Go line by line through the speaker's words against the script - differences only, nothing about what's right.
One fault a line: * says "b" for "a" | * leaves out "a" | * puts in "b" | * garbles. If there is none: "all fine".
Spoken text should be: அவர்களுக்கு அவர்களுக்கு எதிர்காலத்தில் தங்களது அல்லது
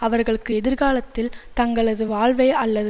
* leaves out "அவர்களுக்கு"
* puts in "வாழ்வை"